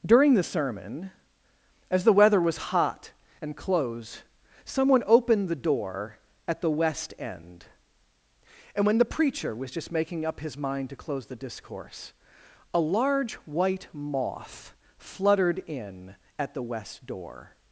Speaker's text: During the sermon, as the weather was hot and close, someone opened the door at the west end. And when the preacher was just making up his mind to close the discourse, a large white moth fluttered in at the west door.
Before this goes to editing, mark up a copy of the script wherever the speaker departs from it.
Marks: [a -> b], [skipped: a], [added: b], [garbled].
During the sermon, as the weather was hot and close, someone opened the door at the west end. And when the preacher was just making up his mind to close the discourse, a large white moth fluttered in at the west door.